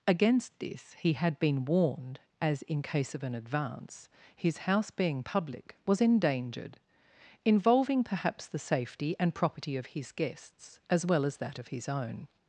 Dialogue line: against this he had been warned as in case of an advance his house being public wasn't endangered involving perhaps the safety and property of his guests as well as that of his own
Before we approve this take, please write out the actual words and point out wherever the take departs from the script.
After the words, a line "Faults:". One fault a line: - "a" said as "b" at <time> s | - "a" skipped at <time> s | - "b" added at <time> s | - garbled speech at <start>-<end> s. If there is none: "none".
against this he had been warned as in case of an advance his house being public was endangered involving perhaps the safety and property of his guests as well as that of his own
Faults:
- "wasn't" said as "was" at 5.8 s